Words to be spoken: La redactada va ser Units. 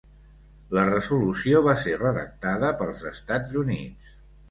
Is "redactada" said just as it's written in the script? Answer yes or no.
no